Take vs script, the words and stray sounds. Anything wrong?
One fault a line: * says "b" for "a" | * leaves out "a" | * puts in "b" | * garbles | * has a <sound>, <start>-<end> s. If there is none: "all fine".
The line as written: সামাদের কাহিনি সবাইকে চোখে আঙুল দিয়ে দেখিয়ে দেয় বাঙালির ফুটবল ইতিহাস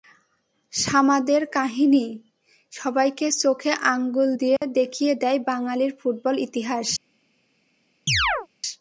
* has a dropout, 4.6-4.6 s
* has a chirp, 8.1-8.5 s